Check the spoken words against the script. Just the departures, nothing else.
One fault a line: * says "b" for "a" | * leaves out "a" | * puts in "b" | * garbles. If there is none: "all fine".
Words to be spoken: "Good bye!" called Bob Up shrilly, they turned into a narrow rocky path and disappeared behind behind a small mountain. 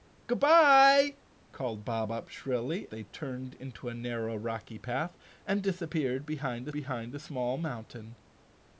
all fine